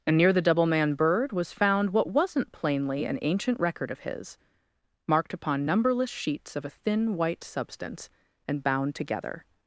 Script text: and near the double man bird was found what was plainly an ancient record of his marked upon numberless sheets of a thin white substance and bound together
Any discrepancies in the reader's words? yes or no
yes